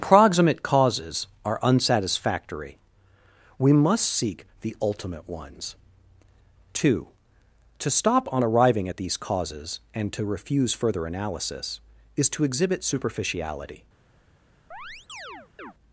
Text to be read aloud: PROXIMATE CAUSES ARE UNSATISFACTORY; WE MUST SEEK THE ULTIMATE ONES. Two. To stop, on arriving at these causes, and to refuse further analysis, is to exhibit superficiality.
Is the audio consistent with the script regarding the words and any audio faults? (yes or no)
no